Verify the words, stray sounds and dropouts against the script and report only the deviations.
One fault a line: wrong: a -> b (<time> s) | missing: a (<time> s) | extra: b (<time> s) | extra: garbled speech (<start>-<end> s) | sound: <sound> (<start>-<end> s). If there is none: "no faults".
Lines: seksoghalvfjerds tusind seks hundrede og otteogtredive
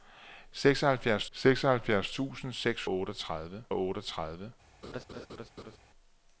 extra: seksoghalvfjerds (1.3 s)
wrong: hundrede -> otteogtredive (2.9 s)
sound: laugh (4.8-5.8 s)